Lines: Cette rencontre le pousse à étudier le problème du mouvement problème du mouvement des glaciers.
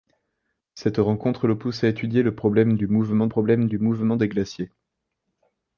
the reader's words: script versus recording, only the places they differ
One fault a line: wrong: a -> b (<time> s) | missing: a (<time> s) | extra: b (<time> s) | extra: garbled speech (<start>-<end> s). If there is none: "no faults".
no faults